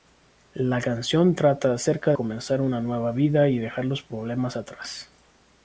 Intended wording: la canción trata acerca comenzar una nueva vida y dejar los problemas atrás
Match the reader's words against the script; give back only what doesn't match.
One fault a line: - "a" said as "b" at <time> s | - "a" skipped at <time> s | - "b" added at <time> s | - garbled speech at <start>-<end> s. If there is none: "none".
none